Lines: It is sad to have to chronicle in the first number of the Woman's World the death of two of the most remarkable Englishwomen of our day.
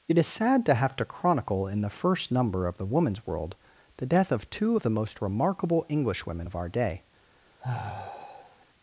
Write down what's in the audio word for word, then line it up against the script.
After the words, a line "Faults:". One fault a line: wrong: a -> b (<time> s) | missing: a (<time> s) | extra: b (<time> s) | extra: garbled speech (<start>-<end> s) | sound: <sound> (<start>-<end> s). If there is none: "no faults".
It is sad to have to chronicle in the first number of the Woman's World the death of two of the most remarkable Englishwomen of our day.
Faults:
sound: sigh (7.6-8.7 s)